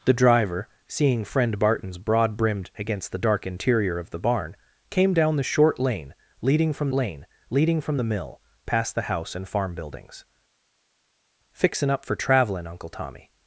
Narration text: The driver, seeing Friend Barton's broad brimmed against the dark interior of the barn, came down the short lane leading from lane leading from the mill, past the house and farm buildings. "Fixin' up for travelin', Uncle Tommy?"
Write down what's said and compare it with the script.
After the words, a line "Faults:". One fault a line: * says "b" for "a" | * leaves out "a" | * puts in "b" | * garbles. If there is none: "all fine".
The driver, seeing Friend Barton's broad brimmed against the dark interior of the barn, came down the short lane leading from lane leading from the mill, past the house and farm buildings. "Fixin' up for travelin', Uncle Tommy?"
Faults:
all fine